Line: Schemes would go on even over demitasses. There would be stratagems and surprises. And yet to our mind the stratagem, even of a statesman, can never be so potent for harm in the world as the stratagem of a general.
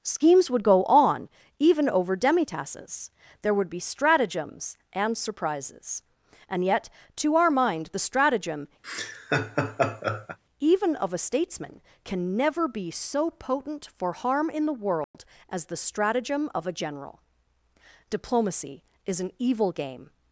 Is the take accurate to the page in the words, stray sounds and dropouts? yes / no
no